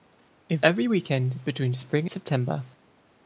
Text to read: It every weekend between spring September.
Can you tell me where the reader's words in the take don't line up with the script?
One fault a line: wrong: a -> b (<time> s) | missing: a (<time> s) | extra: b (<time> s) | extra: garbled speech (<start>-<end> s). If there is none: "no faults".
no faults